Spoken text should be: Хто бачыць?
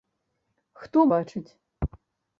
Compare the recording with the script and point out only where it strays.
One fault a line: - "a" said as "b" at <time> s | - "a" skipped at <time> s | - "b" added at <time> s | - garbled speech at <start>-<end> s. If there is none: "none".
none